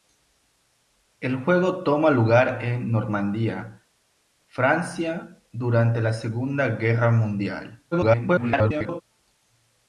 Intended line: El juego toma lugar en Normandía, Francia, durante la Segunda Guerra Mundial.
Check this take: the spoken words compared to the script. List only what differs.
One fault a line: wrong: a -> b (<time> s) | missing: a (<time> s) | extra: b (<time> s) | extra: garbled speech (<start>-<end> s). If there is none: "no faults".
extra: garbled speech (7.9-9.0 s)